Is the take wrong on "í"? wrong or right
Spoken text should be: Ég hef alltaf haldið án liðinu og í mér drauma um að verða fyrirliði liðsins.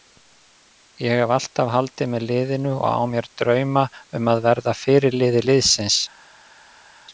wrong